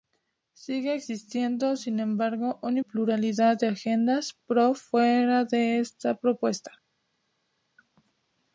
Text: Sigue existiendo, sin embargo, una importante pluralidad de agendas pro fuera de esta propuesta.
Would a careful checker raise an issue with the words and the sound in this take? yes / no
yes